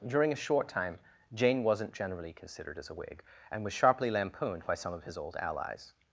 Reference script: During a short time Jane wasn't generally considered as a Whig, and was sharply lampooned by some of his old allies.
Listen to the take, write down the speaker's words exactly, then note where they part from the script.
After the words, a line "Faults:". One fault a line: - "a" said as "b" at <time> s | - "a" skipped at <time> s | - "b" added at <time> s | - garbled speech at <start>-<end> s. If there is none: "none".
During a short time Jane wasn't generally considered as a Whig, and was sharply lampooned by some of his old allies.
Faults:
none